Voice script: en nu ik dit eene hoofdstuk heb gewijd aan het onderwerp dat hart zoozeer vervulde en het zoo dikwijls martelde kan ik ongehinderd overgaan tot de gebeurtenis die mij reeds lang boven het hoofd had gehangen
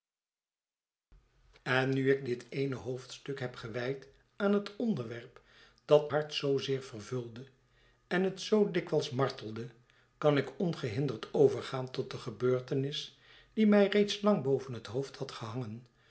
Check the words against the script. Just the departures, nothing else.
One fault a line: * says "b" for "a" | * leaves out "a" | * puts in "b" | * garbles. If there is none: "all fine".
all fine